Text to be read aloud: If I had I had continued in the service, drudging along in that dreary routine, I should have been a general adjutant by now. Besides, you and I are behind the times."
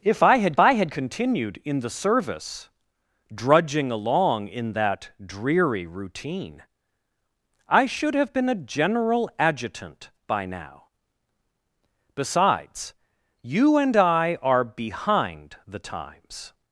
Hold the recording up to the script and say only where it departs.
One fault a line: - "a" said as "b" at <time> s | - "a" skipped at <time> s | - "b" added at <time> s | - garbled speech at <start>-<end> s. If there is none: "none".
none